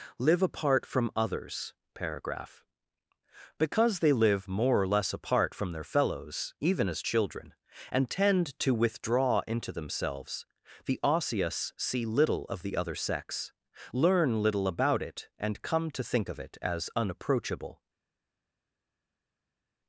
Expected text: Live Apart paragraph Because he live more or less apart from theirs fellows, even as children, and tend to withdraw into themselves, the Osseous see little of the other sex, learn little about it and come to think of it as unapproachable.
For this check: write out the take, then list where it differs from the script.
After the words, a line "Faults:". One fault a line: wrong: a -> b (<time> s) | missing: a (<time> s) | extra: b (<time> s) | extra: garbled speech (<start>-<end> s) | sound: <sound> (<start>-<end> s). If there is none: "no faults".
Live Apart from Others paragraph Because they live more or less apart from their fellows, even as children, and tend to withdraw into themselves, the Osseous see little of the other sex, learn little about it and come to think of it as unapproachable.
Faults:
extra: from Others (0.8 s)
wrong: he -> they (4.0 s)
wrong: theirs -> their (5.7 s)